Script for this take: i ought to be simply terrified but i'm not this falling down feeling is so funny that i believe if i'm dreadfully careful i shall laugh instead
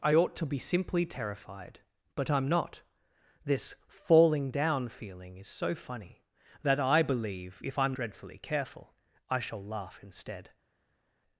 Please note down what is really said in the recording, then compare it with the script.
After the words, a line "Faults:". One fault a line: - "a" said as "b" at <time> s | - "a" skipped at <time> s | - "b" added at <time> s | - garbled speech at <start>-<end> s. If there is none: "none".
i ought to be simply terrified but i'm not this falling down feeling is so funny that i believe if i'm dreadfully careful i shall laugh instead
Faults:
none